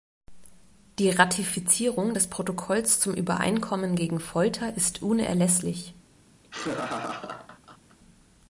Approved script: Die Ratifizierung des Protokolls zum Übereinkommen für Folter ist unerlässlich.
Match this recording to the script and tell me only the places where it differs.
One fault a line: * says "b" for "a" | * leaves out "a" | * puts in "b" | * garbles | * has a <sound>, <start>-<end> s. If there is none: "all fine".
* says "gegen" for "für"
* has a laugh, 6.4-8.0 s